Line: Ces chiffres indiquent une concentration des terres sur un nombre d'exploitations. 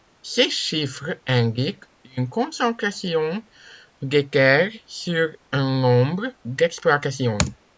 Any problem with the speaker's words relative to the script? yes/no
no